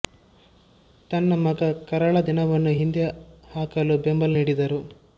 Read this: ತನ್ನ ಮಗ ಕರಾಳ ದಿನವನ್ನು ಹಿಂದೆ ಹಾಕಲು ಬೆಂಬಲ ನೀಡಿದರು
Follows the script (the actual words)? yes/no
yes